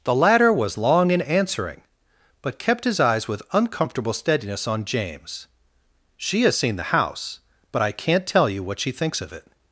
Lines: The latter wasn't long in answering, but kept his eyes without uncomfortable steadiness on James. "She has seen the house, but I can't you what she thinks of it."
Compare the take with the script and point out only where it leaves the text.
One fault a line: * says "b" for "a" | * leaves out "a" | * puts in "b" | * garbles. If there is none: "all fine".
* says "was" for "wasn't"
* says "with" for "without"
* puts in "tell"